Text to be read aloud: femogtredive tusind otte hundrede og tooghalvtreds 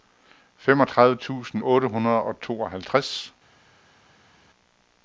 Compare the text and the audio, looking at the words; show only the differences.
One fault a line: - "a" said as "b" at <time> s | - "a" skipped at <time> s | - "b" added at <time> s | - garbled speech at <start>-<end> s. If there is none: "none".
none